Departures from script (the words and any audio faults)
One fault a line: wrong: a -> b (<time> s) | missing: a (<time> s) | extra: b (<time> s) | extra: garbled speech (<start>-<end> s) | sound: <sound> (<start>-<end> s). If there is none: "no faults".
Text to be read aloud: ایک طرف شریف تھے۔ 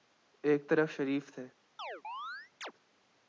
sound: chirp (1.8-2.7 s)